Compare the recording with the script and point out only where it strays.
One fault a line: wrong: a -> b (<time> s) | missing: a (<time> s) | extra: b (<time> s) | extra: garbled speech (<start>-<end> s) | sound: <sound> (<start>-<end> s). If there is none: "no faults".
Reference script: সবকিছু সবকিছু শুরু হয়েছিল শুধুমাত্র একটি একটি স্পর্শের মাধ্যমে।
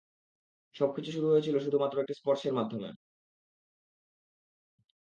missing: সবকিছু (1.1 s)
missing: একটি (2.1 s)